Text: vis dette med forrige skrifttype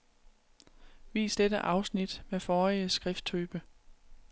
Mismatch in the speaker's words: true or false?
true